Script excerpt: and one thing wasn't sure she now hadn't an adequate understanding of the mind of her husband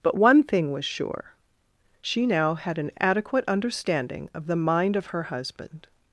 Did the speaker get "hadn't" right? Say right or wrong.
wrong